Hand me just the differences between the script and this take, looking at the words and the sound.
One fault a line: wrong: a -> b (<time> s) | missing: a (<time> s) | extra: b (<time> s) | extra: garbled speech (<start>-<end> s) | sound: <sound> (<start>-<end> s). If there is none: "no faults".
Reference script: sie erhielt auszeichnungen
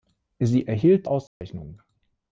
sound: dropout (1.3-1.4 s)